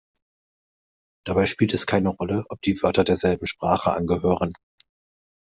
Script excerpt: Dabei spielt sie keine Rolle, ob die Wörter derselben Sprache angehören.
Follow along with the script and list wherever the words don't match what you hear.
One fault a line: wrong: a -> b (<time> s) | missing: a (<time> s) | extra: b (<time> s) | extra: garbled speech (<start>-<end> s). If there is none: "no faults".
wrong: sie -> es (1.8 s)